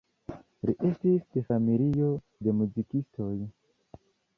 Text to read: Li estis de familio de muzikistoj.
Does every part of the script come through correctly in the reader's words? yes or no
yes